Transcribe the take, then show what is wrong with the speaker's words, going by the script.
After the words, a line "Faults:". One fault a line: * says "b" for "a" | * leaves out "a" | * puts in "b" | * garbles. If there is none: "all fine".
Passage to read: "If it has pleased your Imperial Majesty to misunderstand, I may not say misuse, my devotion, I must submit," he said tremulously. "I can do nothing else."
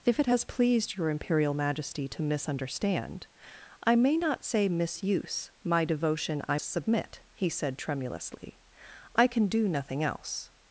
"If it has pleased your Imperial Majesty to misunderstand, I may not say misuse, my devotion, I submit," he said tremulously. "I can do nothing else."
Faults:
* leaves out "must"